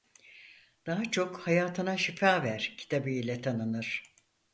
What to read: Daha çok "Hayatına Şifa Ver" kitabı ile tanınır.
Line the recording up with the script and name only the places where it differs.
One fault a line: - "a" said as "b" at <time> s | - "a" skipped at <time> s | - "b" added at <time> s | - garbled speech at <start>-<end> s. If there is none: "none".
none